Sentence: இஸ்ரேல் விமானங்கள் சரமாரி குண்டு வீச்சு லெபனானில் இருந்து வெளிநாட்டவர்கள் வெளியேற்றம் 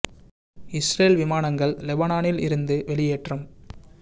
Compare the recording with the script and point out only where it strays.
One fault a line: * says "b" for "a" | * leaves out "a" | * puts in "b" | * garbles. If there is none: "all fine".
* leaves out "சரமாரி குண்டு வீச்சு"
* leaves out "வெளிநாட்டவர்கள்"